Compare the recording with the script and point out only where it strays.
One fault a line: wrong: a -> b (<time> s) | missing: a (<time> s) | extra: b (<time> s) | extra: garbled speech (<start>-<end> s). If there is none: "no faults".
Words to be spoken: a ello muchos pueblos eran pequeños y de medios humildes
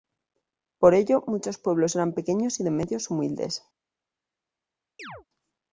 wrong: a -> por (0.8 s)